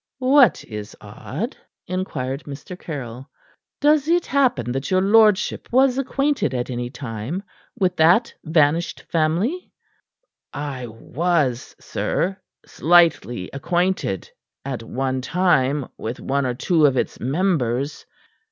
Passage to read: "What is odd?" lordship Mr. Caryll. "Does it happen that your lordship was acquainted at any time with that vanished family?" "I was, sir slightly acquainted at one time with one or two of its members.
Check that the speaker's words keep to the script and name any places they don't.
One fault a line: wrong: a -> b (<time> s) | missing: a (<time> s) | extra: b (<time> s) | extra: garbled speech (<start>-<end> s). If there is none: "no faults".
wrong: lordship -> inquired (1.9 s)